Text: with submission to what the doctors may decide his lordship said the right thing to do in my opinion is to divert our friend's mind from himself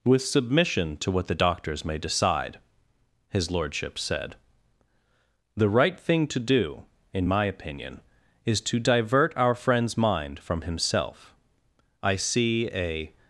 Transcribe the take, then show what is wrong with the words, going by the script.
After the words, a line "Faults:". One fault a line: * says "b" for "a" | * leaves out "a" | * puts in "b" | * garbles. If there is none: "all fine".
with submission to what the doctors may decide his lordship said the right thing to do in my opinion is to divert our friend's mind from himself i see a
Faults:
* puts in "i see a"